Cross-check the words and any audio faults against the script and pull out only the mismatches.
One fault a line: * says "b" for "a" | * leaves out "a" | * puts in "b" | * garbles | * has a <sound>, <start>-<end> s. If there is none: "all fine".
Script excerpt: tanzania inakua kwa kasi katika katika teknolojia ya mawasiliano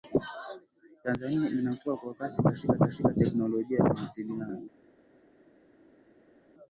all fine